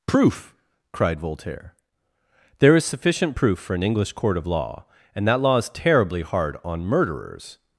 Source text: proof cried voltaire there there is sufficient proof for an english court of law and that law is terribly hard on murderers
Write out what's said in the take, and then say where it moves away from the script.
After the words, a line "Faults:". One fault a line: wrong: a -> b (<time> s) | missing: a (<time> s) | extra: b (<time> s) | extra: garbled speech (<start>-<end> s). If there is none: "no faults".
proof cried voltaire there is sufficient proof for an english court of law and that law is terribly hard on murderers
Faults:
missing: there (2.8 s)